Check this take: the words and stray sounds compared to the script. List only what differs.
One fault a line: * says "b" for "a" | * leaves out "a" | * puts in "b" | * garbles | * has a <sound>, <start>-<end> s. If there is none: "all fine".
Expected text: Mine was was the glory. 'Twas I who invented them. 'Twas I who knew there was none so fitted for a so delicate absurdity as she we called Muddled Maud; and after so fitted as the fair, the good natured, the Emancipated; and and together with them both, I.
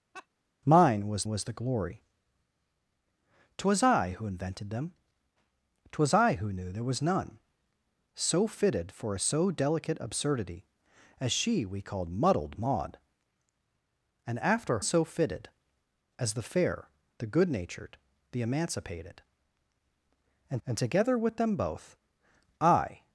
* has a laugh, 0.1-0.3 s